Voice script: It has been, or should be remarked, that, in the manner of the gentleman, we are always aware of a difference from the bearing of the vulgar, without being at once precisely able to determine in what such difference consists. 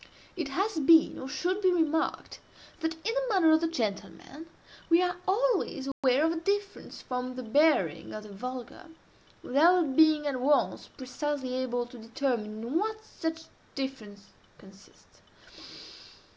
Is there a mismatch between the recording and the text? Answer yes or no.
no